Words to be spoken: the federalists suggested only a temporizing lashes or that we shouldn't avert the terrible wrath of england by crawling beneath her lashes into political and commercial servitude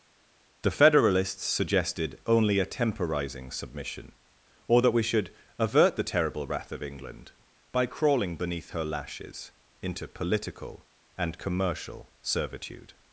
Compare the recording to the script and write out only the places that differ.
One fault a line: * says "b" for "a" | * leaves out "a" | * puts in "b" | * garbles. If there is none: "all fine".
* says "submission" for "lashes"
* says "should" for "shouldn't"